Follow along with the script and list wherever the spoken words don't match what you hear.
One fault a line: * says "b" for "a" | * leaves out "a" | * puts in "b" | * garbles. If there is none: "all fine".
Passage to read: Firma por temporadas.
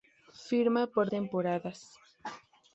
all fine